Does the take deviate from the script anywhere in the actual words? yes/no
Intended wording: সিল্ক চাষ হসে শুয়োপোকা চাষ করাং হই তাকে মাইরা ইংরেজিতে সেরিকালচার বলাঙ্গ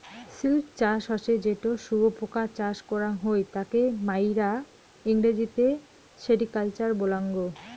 yes